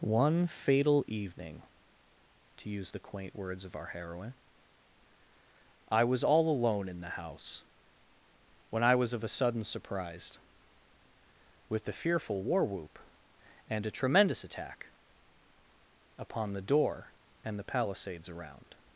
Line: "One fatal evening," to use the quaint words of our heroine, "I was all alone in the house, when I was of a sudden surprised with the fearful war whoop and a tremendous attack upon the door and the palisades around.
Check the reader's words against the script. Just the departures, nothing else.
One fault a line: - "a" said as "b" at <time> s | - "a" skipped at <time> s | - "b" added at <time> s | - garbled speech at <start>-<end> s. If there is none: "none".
none